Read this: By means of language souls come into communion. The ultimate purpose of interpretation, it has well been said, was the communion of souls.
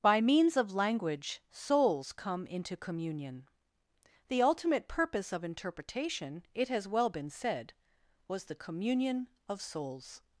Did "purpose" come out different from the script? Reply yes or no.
no